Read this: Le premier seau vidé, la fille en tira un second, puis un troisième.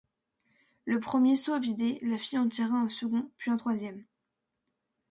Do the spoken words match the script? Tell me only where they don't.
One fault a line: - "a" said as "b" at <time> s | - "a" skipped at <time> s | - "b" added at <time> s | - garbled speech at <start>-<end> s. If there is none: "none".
none